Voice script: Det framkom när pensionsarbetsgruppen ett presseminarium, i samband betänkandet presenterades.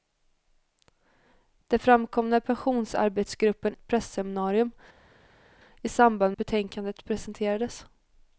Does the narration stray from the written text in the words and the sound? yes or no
no